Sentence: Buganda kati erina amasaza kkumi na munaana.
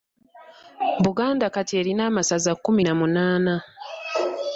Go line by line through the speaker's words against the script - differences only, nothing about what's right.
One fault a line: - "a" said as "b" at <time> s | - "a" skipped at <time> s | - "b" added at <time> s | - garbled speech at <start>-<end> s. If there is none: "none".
none